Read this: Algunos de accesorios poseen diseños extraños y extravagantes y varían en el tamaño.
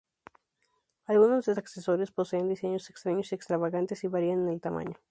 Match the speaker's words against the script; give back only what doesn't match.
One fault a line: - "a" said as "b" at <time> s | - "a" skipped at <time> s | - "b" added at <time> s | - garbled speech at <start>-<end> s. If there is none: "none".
none